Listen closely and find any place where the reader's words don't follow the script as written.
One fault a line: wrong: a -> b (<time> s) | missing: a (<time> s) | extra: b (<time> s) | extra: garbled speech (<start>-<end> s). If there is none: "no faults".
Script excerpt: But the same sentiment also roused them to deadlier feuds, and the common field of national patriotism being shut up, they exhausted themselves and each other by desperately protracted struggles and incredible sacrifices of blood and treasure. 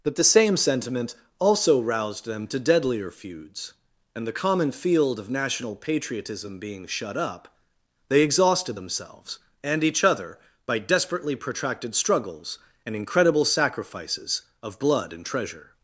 no faults